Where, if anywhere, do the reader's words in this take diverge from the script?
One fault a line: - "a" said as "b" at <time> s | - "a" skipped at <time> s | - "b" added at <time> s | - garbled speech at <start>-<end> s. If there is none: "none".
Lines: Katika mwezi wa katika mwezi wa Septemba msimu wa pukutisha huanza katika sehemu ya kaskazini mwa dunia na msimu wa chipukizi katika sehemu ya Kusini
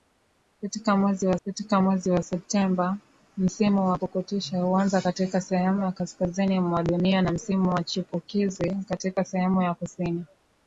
none